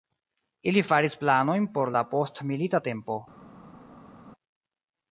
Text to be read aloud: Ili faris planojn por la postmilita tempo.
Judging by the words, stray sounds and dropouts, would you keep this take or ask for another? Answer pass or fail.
pass